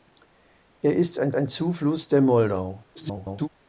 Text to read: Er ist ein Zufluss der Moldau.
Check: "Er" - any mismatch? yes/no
no